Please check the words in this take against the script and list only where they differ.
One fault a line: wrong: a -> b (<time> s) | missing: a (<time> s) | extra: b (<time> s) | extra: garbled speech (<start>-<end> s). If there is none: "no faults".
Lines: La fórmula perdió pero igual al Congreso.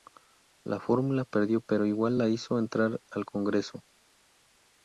extra: la hizo entrar (2.2 s)